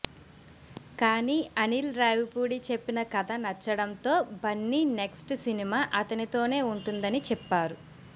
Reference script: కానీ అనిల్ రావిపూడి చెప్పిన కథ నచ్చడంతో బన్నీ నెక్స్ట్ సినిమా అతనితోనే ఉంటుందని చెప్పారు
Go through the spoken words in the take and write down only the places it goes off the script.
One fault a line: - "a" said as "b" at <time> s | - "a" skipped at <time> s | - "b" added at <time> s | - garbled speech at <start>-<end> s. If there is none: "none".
none